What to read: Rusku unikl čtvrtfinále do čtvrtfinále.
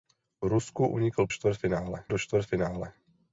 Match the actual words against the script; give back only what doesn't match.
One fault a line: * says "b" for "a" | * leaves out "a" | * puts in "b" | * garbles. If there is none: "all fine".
all fine